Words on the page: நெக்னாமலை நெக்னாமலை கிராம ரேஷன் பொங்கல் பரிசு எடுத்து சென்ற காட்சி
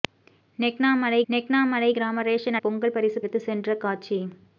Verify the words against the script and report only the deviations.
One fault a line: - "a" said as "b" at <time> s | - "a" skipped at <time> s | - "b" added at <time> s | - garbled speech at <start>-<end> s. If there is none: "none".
none